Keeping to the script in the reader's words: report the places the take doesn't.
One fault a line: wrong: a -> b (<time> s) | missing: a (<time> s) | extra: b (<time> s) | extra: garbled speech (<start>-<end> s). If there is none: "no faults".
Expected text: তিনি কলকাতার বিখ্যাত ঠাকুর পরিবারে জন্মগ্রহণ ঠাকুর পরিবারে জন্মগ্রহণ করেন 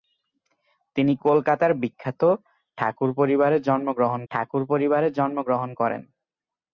no faults